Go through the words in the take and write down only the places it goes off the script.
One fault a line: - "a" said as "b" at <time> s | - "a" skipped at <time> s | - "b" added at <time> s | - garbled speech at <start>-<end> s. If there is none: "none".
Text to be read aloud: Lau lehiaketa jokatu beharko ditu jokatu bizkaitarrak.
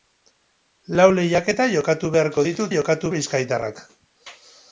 none